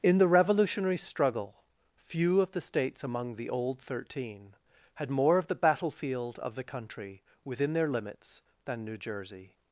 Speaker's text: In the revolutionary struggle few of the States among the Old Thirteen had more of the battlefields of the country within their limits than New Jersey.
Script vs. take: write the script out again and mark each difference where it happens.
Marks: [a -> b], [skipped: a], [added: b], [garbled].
In the revolutionary struggle few of the States among the Old Thirteen had more of the [battlefields -> battlefield] of the country within their limits than New Jersey.